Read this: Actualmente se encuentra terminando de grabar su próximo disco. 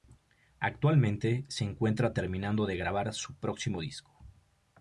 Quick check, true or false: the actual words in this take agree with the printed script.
true